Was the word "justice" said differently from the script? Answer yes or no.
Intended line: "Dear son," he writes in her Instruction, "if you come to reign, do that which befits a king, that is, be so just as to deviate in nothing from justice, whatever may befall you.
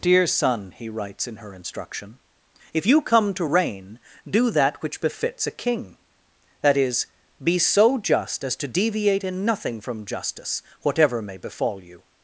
no